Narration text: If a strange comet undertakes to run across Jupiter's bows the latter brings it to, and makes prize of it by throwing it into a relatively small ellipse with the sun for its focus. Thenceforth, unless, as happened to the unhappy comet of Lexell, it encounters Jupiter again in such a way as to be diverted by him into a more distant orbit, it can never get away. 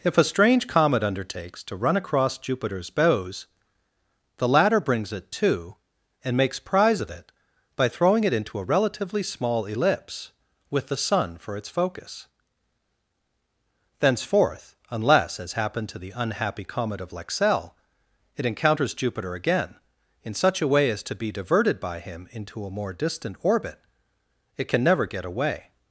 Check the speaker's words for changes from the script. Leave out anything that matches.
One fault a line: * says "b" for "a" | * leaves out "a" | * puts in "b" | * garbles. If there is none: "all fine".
all fine